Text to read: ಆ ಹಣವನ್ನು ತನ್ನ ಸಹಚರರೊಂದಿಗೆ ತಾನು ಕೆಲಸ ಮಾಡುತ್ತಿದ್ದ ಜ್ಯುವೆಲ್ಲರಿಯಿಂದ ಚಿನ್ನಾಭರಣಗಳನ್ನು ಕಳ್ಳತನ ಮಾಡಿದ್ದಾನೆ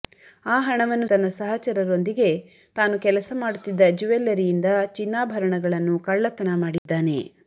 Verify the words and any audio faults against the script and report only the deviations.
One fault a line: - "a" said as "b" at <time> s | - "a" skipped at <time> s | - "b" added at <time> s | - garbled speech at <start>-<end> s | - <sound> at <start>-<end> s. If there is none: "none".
- dropout at 6.8-6.9 s